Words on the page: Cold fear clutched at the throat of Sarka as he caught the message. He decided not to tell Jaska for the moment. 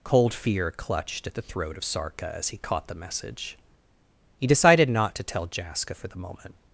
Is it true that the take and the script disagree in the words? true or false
false